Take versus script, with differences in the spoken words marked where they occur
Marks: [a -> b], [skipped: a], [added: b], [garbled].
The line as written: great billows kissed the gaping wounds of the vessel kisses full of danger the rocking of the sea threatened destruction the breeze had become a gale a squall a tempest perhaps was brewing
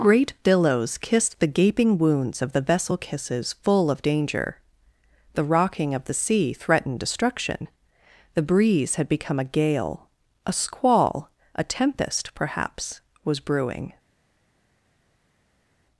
great billows kissed the gaping wounds of the vessel kisses full of danger the rocking of the sea threatened destruction the breeze had become a gale a squall a tempest perhaps was brewing